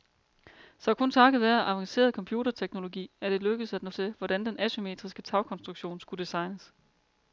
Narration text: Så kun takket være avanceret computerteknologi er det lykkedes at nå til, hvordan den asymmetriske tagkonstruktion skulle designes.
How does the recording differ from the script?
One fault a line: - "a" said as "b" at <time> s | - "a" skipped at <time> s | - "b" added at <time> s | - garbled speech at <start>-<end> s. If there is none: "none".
none